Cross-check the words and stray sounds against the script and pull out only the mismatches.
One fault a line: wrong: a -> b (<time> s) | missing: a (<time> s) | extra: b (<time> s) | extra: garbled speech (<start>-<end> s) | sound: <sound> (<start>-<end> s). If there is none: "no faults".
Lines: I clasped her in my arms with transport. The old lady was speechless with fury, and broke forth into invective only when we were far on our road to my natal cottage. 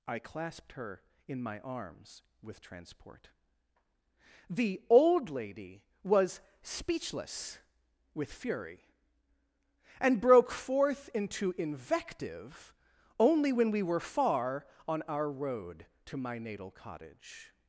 no faults